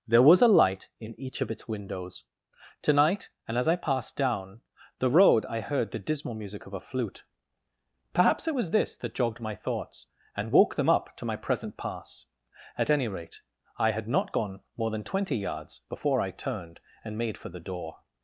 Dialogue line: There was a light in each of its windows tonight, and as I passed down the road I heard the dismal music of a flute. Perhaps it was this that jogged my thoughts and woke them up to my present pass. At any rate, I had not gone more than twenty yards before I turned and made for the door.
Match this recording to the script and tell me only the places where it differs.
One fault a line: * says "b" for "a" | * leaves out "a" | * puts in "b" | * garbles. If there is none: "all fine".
all fine